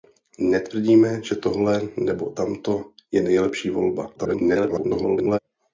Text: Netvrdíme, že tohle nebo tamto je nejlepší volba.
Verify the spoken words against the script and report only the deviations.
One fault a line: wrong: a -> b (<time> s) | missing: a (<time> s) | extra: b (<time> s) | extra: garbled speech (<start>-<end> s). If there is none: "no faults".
extra: garbled speech (4.1-5.4 s)